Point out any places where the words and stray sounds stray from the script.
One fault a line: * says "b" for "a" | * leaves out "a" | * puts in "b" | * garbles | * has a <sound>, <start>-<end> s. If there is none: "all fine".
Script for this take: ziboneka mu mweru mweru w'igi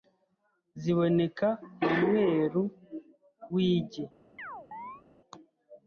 * leaves out "mweru"
* has a chirp, 4.4-5.0 s